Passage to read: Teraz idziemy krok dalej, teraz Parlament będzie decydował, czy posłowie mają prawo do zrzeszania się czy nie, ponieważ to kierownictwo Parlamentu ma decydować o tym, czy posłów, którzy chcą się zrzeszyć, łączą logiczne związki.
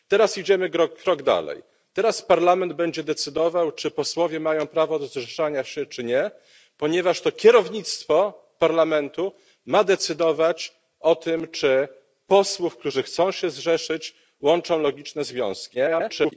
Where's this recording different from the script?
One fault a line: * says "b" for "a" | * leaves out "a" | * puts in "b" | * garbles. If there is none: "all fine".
* garbles